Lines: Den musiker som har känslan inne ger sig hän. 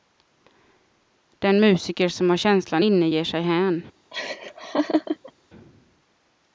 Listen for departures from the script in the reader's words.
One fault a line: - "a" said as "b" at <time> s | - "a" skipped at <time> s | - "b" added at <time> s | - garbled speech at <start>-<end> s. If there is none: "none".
none